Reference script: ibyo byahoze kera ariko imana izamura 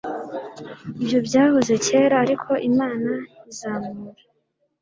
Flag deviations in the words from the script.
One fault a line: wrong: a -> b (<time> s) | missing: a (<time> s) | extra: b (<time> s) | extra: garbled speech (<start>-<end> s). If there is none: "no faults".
no faults